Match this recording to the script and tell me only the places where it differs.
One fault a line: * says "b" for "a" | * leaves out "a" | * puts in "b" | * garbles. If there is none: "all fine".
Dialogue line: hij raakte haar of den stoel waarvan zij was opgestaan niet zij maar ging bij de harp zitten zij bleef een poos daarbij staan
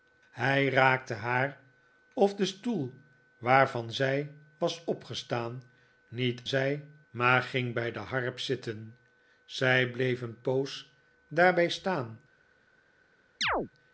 all fine